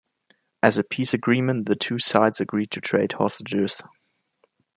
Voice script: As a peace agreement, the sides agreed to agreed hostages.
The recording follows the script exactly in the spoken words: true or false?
false